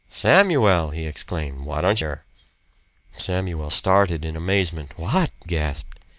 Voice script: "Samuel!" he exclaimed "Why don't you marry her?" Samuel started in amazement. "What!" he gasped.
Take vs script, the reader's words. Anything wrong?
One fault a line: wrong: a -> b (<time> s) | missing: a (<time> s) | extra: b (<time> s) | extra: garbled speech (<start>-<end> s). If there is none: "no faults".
missing: you marry (2.0 s)
missing: he (5.3 s)